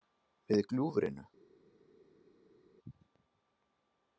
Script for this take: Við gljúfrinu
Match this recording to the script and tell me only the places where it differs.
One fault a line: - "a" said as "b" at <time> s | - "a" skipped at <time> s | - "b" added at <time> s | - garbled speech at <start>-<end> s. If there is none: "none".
none